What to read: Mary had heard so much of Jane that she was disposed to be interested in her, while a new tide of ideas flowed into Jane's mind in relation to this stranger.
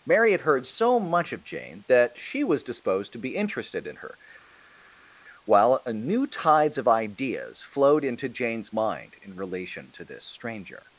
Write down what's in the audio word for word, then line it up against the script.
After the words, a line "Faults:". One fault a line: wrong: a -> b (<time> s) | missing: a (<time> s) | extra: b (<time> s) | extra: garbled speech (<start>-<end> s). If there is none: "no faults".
Mary had heard so much of Jane that she was disposed to be interested in her, while a new tides of ideas flowed into Jane's mind in relation to this stranger.
Faults:
wrong: tide -> tides (6.3 s)